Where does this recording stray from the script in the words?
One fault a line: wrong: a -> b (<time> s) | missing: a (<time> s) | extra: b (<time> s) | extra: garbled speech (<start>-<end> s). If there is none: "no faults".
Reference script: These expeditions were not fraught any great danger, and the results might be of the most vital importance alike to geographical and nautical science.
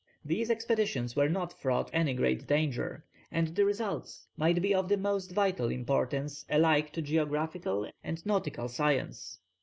no faults